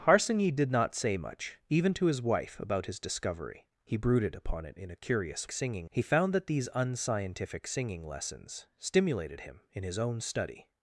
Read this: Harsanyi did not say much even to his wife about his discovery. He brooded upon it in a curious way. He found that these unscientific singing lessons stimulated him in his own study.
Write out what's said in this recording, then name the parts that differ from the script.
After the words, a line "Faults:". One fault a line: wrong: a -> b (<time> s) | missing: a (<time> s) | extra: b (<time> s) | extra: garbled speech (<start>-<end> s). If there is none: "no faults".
Harsanyi did not say much even to his wife about his discovery. He brooded upon it in a curious singing. He found that these unscientific singing lessons stimulated him in his own study.
Faults:
wrong: way -> singing (5.5 s)